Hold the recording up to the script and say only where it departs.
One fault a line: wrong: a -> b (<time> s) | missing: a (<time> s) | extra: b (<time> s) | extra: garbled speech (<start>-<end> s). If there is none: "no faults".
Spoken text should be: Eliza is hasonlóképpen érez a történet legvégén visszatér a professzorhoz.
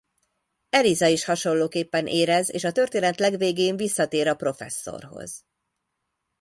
extra: és (2.5 s)